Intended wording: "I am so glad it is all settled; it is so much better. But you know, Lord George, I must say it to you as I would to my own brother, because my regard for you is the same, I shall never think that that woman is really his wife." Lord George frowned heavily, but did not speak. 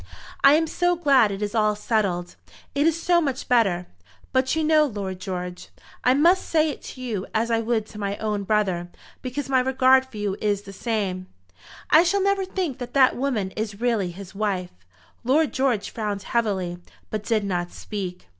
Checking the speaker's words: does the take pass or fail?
pass